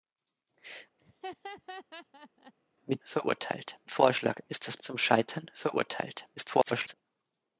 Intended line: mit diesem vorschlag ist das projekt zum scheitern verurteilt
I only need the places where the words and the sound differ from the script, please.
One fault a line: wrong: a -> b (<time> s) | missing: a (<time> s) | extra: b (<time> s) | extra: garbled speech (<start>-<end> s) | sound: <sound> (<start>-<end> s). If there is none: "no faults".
sound: laugh (1.0-2.5 s)
wrong: diesem -> verurteilt (3.0 s)
missing: projekt (4.8 s)
extra: garbled speech (6.4-6.9 s)